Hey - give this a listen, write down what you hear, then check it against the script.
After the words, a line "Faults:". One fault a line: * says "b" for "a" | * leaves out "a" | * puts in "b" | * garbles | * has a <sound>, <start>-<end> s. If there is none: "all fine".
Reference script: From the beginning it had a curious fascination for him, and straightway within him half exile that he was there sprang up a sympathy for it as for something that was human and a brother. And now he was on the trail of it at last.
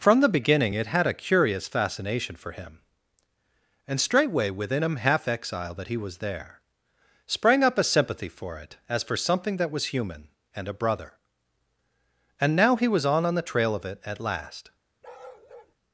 From the beginning it had a curious fascination for him, and straightway within him half exile that he was there sprang up a sympathy for it as for something that was human and a brother. And now he was on on the trail of it at last.
Faults:
* puts in "on"
* has a bark, 15.0-15.7 s